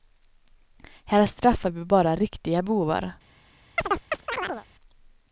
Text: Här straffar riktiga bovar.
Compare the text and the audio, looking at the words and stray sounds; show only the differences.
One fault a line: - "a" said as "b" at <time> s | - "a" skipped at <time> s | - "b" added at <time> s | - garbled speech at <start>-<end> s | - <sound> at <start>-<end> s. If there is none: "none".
- "vi bara" added at 1.7 s
- chirp at 3.8-4.7 s